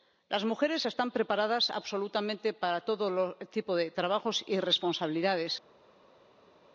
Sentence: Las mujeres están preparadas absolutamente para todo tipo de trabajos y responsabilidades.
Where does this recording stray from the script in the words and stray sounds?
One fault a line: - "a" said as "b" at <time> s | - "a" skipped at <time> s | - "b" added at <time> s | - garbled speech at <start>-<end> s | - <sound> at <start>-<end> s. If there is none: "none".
none